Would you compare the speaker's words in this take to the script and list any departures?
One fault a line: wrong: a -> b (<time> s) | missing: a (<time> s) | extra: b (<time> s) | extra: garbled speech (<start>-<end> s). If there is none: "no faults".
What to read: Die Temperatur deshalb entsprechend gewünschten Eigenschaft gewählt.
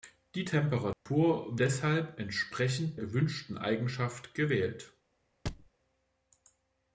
no faults